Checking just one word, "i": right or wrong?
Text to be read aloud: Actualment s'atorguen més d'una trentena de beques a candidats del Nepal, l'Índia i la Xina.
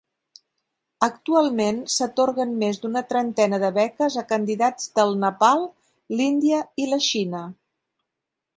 right